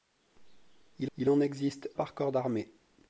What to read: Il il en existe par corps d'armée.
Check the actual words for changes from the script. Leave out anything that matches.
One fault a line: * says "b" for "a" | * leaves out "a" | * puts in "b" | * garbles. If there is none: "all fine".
all fine